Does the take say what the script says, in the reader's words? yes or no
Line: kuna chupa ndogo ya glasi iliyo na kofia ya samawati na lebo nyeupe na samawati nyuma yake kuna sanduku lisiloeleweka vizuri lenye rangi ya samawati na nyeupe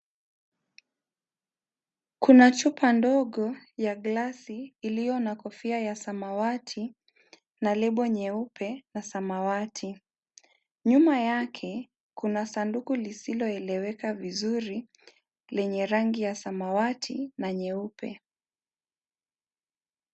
yes